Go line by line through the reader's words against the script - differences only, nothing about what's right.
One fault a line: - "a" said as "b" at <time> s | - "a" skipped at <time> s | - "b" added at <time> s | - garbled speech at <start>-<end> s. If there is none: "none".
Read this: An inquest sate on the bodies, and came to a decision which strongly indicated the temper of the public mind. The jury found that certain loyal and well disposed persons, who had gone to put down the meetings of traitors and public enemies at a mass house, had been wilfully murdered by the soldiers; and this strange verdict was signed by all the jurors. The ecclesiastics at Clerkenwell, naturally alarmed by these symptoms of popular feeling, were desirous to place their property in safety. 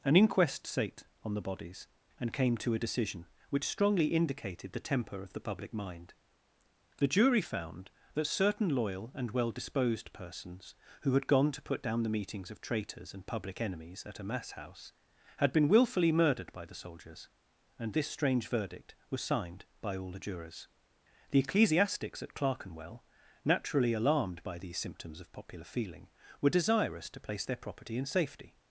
none